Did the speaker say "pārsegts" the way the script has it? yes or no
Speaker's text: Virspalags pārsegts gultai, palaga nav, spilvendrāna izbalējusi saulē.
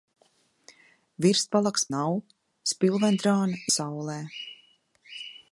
no